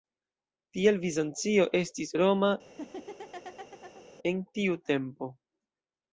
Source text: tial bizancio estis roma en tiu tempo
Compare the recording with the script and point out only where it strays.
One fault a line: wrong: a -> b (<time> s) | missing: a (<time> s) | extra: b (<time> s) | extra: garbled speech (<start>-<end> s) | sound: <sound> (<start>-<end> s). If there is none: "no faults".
sound: laugh (2.6-4.1 s)